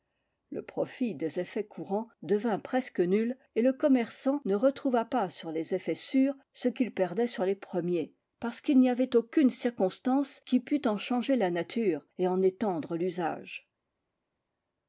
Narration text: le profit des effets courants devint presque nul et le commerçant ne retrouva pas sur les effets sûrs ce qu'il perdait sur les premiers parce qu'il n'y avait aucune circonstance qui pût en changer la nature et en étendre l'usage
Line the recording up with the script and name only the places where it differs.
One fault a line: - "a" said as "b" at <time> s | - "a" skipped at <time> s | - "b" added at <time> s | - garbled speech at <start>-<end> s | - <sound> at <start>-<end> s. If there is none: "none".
none